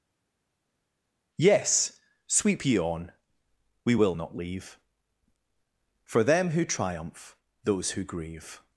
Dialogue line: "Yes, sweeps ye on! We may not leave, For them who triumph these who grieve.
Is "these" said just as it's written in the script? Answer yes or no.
no